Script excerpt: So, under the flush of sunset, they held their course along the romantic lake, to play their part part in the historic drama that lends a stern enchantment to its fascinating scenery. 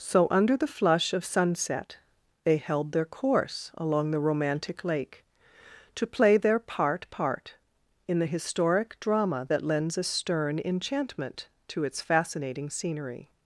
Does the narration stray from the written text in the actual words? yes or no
no